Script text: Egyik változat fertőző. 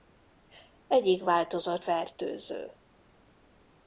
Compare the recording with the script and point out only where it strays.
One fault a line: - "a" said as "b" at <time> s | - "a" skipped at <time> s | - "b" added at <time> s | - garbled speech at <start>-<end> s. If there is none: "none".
none